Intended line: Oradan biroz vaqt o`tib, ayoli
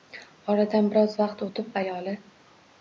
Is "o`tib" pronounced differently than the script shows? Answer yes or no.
no